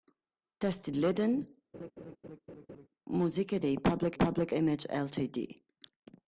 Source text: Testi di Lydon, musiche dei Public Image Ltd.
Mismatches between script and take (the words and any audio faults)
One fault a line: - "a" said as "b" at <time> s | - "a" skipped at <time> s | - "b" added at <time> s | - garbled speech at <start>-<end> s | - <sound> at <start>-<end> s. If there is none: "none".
- "di" skipped at 0.9 s
- laugh at 1.7-2.9 s
- "Public" added at 4.1 s